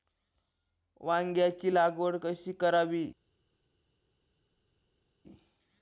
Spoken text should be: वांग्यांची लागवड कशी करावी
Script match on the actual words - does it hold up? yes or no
yes